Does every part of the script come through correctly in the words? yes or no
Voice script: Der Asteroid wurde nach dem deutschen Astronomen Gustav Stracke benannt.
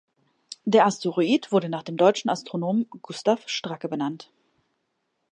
yes